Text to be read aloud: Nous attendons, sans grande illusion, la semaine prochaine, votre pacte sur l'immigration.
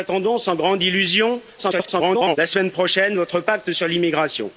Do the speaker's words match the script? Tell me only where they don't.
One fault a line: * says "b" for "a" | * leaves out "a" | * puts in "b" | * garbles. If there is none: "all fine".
* garbles